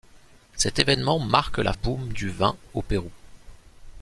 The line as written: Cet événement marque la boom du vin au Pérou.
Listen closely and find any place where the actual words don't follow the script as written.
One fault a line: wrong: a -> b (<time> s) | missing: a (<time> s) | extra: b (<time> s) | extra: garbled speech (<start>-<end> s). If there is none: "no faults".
no faults